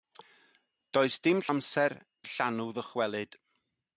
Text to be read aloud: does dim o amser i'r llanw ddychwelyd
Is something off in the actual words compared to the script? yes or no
no